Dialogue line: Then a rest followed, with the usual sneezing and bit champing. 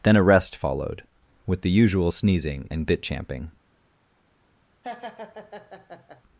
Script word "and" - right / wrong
right